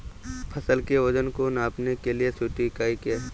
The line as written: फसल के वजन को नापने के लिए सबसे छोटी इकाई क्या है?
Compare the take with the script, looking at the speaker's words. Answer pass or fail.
fail